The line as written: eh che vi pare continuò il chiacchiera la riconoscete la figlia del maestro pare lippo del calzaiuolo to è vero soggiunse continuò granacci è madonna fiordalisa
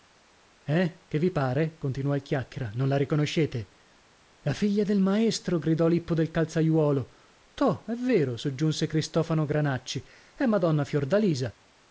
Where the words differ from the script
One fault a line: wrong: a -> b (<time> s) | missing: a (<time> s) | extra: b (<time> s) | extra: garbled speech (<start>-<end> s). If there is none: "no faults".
extra: non (2.7 s)
wrong: pare -> gridò (5.6 s)
wrong: continuò -> cristofano (8.9 s)